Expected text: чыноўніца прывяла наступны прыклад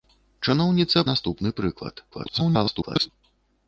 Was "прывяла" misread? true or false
true